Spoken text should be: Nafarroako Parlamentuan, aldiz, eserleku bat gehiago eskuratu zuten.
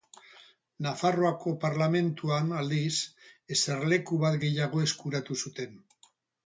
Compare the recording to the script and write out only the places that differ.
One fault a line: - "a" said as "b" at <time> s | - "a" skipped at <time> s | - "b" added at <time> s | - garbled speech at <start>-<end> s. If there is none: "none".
none